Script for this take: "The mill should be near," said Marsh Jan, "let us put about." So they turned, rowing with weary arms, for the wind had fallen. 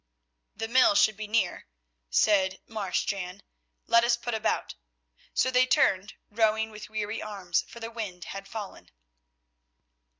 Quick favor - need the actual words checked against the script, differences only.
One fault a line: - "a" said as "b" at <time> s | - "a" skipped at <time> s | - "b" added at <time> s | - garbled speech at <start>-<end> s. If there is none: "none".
none